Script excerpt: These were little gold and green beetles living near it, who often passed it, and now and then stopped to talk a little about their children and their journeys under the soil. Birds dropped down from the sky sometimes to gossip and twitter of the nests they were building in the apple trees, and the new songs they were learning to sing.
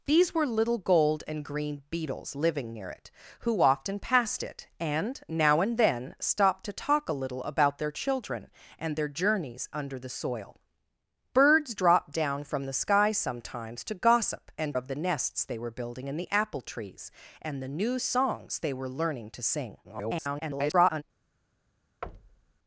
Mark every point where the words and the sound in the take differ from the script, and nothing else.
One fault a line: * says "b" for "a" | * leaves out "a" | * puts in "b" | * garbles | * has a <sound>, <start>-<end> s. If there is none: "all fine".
* leaves out "twitter"
* garbles
* has a thud, 22.0-22.6 s